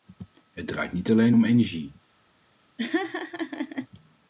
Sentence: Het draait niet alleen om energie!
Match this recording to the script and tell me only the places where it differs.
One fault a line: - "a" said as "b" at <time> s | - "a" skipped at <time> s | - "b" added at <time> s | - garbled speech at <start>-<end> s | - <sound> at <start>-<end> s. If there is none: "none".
- laugh at 2.8-3.9 s